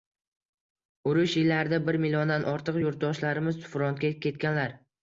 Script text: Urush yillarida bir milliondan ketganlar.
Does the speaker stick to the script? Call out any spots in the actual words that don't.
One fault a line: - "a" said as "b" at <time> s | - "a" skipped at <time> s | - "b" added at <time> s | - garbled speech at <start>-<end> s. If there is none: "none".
- "ortiq yurtdoshlarimiz frontga" added at 2.5 s